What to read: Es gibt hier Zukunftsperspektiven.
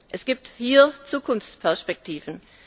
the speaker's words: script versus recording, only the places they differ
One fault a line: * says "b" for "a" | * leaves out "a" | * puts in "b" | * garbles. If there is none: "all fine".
all fine